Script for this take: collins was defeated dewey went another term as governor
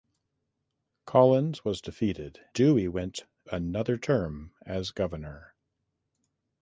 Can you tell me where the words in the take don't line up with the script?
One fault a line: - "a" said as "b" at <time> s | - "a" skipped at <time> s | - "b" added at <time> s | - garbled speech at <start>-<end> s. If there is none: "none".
none